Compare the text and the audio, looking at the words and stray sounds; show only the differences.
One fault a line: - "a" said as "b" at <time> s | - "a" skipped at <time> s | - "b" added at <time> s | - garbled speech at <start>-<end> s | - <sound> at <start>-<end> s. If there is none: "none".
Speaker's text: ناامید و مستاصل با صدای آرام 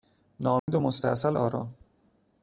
- dropout at 0.6-0.7 s
- "با صدای" skipped at 1.3 s